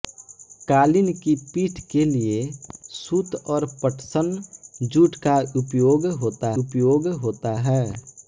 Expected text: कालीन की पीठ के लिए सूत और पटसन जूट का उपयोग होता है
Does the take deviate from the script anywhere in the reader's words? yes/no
yes